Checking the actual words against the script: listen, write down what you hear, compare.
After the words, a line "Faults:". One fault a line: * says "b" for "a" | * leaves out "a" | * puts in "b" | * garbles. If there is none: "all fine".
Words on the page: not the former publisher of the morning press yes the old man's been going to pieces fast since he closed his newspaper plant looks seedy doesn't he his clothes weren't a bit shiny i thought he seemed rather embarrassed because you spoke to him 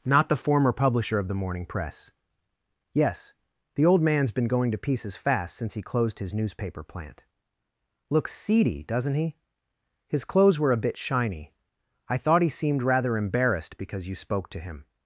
not the former publisher of the morning press yes the old man's been going to pieces fast since he closed his newspaper plant looks seedy doesn't he his clothes were a bit shiny i thought he seemed rather embarrassed because you spoke to him
Faults:
* says "were" for "weren't"